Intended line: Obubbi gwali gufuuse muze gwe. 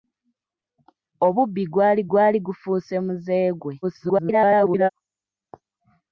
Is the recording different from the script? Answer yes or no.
yes